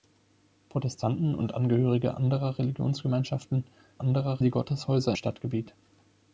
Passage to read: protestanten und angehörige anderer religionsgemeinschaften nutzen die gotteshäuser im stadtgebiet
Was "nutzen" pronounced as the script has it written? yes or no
no